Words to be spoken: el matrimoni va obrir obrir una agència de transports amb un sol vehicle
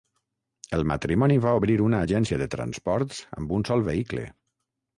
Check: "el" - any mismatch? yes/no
no